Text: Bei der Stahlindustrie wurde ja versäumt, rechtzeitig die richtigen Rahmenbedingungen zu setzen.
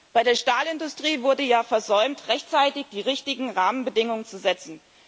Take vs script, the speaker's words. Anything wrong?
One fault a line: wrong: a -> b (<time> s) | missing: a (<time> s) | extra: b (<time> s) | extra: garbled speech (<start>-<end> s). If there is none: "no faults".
no faults